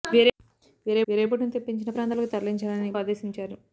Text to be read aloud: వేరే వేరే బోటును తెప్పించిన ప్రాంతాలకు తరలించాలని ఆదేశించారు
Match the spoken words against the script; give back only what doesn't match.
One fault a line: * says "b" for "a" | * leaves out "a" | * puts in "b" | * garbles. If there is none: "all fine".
all fine